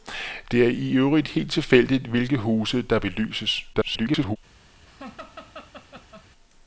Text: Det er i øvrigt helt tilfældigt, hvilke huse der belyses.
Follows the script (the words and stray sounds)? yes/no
no